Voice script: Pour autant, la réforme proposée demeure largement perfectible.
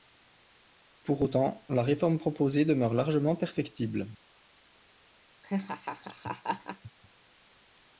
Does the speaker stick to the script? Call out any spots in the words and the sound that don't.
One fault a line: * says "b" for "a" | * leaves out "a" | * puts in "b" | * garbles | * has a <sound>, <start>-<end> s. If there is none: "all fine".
* has a laugh, 5.4-6.9 s